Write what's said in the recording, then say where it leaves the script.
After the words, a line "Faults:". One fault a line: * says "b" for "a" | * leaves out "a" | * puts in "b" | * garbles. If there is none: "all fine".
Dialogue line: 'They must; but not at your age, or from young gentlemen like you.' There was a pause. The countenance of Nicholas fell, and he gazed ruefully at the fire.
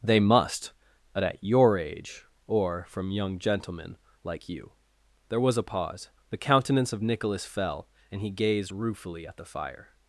'They must; but at your age, or from young gentlemen like you.' There was a pause. The countenance of Nicholas fell, and he gazed ruefully at the fire.
Faults:
* leaves out "not"